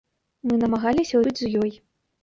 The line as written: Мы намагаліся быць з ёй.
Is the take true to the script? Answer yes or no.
yes